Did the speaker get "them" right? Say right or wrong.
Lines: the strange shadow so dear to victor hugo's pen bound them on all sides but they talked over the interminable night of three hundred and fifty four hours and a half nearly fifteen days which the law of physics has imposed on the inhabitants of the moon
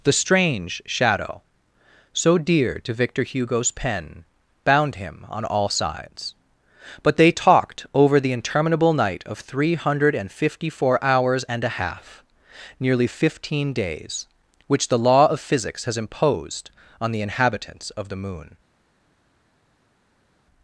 wrong